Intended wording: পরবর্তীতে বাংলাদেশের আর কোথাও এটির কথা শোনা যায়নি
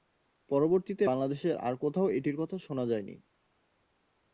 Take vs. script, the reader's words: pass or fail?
pass